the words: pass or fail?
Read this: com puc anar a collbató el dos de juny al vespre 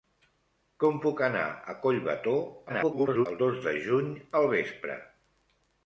fail